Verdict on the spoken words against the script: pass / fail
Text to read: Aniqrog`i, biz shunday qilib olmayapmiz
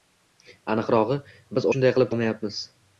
pass